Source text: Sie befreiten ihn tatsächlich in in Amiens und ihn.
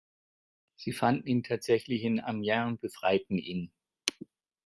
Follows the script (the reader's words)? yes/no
no